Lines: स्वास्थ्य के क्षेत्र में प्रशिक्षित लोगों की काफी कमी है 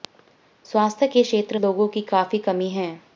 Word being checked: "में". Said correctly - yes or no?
no